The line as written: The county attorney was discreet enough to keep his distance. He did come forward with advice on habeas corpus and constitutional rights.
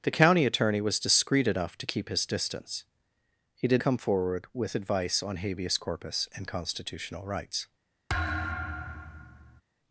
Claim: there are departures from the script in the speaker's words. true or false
false